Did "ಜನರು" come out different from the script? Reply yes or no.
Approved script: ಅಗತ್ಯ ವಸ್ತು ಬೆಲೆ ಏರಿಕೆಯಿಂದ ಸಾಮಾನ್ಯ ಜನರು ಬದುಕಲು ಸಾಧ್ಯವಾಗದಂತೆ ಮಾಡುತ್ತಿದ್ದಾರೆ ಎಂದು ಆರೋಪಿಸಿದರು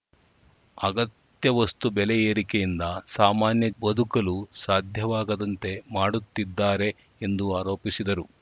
yes